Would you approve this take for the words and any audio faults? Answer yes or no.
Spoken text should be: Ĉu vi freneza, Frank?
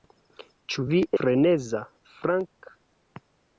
yes